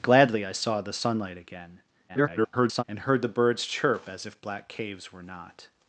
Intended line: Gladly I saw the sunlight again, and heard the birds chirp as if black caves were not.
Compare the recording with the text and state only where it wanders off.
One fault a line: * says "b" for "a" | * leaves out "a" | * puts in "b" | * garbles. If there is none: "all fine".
* garbles